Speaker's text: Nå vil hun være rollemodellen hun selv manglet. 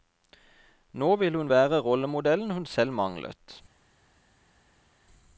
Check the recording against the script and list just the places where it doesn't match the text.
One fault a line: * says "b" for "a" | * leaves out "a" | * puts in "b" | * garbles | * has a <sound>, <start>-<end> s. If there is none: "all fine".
all fine